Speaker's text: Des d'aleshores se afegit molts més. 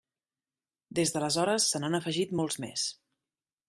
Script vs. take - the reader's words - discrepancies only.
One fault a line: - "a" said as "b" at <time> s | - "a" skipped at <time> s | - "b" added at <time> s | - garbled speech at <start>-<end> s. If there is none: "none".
- "n'han" added at 1.8 s